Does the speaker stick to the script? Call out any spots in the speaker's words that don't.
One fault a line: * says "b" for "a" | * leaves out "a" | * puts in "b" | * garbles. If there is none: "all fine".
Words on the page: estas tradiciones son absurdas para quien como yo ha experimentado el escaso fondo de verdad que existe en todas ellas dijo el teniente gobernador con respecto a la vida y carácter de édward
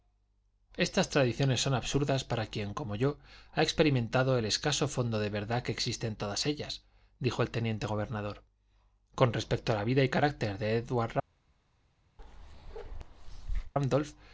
all fine